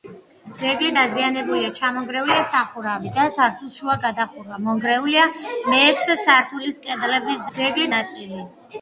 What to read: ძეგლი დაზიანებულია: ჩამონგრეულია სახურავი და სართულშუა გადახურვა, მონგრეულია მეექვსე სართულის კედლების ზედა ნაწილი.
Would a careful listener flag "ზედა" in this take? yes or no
yes